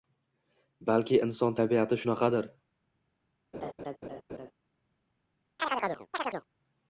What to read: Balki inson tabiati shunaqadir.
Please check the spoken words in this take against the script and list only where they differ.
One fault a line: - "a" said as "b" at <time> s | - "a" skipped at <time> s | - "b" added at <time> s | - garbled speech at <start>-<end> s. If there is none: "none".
none